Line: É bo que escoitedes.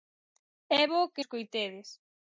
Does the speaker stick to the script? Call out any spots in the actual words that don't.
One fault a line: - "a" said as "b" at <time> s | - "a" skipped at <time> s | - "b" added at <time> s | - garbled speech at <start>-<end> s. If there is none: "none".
none